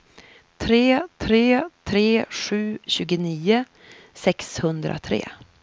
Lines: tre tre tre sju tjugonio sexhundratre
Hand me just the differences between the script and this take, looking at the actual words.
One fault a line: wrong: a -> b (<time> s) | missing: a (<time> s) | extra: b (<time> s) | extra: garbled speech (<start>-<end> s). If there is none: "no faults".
no faults